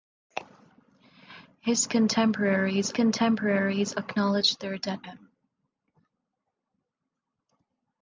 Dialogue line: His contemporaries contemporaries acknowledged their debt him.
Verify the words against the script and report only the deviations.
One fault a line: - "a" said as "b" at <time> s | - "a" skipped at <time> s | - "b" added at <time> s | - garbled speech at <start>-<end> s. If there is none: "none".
none